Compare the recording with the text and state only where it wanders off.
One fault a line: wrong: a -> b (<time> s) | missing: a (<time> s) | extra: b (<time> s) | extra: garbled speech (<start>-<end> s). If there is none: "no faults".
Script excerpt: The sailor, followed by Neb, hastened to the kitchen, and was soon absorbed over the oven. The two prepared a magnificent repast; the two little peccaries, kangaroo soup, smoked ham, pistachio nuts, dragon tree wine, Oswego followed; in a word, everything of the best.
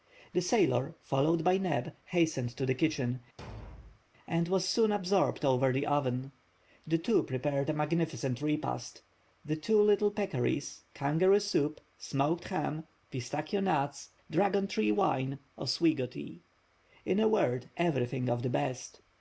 wrong: followed -> tea (16.0 s)